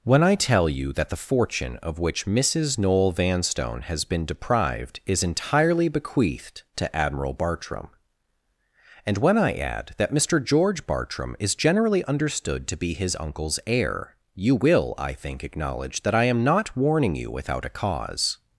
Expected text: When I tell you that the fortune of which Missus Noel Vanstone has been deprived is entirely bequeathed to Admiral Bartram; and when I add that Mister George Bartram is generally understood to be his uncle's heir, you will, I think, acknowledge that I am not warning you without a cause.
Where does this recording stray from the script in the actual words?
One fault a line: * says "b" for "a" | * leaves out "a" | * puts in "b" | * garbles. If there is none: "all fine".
all fine